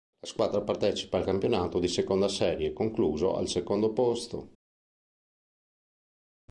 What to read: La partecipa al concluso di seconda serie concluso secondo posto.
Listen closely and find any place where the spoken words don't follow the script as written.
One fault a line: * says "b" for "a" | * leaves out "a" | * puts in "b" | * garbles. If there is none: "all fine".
* puts in "squadra"
* says "campionato" for "concluso"
* puts in "al"